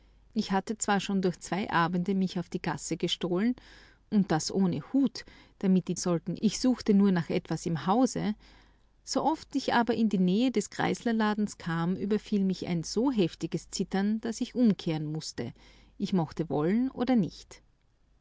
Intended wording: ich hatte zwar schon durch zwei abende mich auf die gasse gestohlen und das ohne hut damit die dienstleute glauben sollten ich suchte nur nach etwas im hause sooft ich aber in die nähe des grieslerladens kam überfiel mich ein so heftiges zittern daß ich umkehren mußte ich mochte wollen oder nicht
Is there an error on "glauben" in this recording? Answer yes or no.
yes